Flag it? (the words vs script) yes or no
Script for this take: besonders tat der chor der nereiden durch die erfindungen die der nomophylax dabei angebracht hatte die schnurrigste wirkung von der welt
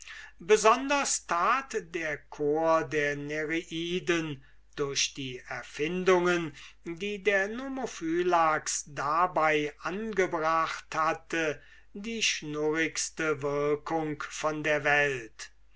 no